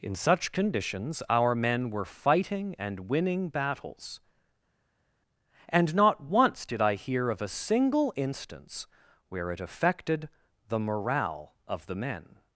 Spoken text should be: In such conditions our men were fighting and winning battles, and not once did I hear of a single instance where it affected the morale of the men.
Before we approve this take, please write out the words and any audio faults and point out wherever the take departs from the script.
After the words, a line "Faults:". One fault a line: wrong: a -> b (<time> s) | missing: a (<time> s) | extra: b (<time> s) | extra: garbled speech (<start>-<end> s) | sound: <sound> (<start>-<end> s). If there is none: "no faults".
In such conditions our men were fighting and winning battles, and not once did I hear of a single instance where it affected the morale of the men.
Faults:
no faults